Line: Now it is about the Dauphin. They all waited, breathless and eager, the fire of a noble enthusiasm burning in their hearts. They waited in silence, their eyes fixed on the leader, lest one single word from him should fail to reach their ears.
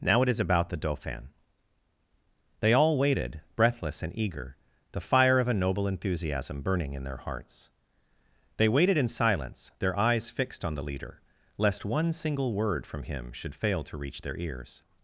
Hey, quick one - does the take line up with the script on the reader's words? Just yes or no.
yes